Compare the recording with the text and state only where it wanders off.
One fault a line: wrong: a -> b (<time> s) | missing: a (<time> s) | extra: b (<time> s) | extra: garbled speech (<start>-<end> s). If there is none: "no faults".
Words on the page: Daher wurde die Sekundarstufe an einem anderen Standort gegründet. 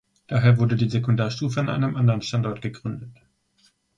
no faults